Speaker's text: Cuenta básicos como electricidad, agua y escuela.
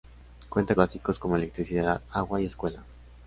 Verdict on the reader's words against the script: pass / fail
pass